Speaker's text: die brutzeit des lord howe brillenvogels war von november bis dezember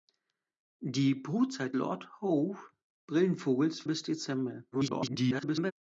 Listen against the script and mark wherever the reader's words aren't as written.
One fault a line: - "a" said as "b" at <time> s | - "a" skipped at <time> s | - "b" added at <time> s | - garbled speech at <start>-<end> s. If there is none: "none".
- "des" skipped at 1.8 s
- "war von november" skipped at 3.9 s
- garbled speech at 4.7-5.7 s